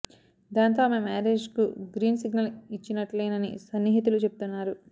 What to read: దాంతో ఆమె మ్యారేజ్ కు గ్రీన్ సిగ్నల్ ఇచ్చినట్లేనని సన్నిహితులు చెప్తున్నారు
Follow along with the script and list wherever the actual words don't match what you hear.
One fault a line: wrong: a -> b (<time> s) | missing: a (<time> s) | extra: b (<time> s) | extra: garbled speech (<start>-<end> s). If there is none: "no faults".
no faults